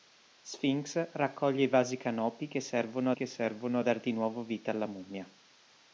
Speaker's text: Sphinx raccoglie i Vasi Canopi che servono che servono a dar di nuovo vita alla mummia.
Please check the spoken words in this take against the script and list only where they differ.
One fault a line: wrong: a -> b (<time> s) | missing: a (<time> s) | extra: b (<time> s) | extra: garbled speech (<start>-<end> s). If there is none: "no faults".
no faults